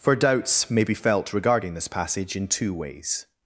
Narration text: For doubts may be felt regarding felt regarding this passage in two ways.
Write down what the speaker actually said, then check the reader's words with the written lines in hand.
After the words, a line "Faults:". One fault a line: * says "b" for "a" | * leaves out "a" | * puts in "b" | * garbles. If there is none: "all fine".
For doubts may be felt regarding this passage in two ways.
Faults:
* leaves out "felt regarding"